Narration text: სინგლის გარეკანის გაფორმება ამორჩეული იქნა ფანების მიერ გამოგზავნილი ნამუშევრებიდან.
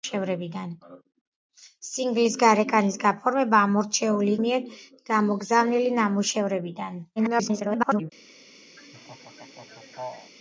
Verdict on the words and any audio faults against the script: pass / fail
fail